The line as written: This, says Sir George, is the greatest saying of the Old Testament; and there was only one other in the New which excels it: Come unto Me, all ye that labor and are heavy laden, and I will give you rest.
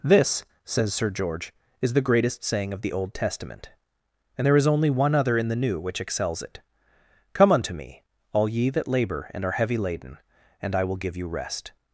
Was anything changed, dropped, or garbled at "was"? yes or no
yes